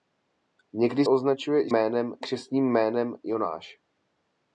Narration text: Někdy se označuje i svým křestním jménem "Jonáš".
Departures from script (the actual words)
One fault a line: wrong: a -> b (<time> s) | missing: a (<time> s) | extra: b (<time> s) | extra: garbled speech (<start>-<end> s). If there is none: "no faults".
missing: se (1.1 s)
wrong: svým -> jménem (1.7 s)